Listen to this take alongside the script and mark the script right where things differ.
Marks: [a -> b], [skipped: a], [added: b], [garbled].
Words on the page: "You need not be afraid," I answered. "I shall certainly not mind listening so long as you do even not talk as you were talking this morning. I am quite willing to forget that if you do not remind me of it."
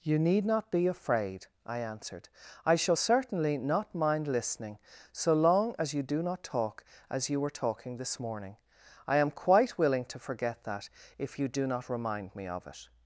"You need not be afraid," I answered. "I shall certainly not mind listening so long as you do [skipped: even] not talk as you were talking this morning. I am quite willing to forget that if you do not remind me of it."